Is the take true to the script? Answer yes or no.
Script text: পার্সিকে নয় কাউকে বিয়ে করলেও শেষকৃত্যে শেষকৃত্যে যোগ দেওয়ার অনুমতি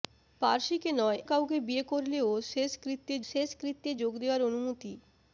yes